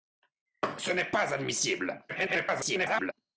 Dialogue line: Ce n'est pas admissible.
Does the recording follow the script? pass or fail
fail